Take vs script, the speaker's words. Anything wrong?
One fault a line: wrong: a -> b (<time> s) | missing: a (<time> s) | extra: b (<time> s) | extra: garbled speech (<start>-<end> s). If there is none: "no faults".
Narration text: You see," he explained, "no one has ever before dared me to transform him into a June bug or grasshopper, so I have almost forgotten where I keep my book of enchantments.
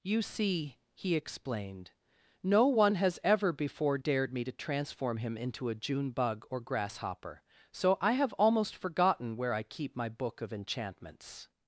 no faults